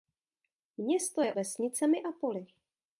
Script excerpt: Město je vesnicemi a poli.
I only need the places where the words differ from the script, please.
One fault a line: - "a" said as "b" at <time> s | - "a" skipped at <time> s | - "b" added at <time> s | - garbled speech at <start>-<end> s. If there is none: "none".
none